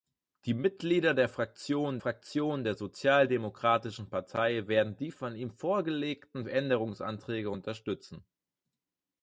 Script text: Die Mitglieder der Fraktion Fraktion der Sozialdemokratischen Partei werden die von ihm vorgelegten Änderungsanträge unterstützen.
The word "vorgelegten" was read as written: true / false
true